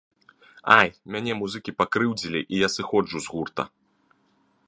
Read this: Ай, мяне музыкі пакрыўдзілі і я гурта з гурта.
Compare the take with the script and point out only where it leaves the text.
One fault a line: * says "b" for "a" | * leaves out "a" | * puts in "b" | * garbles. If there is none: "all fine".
* says "сыходжу" for "гурта"